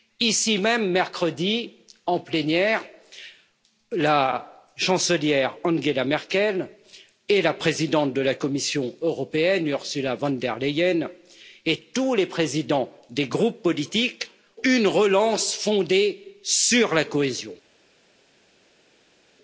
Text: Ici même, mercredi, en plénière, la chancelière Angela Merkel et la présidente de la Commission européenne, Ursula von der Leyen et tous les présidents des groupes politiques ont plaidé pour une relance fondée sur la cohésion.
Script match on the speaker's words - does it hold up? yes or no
no